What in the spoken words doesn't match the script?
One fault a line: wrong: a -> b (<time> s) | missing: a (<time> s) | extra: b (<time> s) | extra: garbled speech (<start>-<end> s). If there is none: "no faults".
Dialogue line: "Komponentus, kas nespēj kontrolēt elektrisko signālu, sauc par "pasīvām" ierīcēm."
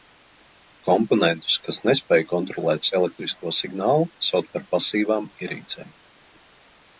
no faults